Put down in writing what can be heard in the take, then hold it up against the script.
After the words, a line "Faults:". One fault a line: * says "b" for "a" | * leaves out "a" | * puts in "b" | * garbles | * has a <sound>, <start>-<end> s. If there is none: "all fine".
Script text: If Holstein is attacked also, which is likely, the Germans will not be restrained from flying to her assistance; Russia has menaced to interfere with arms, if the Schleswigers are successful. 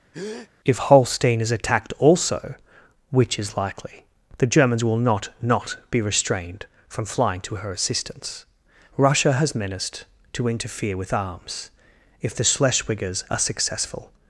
If Holstein is attacked also, which is likely, the Germans will not not be restrained from flying to her assistance; Russia has menaced to interfere with arms, if the Schleswigers are successful.
Faults:
* has a breath, 0.1-0.5 s
* puts in "not"